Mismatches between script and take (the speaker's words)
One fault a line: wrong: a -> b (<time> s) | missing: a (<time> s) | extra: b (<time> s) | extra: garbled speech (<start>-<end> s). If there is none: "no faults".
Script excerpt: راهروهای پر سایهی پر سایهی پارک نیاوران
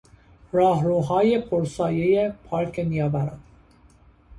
missing: پر سایهی (2.3 s)